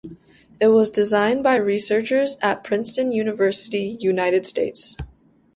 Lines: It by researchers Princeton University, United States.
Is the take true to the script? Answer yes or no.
no